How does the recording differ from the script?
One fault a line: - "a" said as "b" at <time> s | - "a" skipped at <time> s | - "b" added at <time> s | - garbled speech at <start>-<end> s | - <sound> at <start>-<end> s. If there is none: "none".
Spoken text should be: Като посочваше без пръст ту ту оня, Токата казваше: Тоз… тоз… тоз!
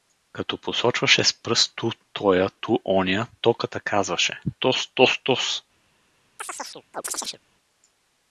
- "без" said as "с" at 1.2 s
- "тоя" added at 2.1 s
- chirp at 6.4-7.4 s